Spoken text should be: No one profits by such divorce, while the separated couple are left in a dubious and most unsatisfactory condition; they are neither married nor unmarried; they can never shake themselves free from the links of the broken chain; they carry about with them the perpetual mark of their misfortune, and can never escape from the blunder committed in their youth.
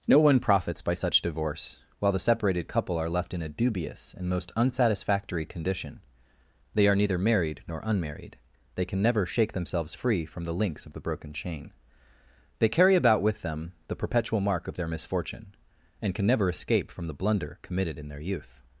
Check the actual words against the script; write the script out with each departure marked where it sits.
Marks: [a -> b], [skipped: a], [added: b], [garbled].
No one profits by such divorce, while the separated couple are left in a dubious and most unsatisfactory condition; they are neither married nor unmarried; they can never shake themselves free from the links of the broken chain; they carry about with them the perpetual mark of their misfortune, and can never escape from the blunder committed in their youth.